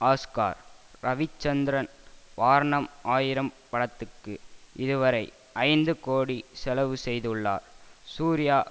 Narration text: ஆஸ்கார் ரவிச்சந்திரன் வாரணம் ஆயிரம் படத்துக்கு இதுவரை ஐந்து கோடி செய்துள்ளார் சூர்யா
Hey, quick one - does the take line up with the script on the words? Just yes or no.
no